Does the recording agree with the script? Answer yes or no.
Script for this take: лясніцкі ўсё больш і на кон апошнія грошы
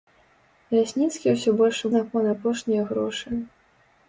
yes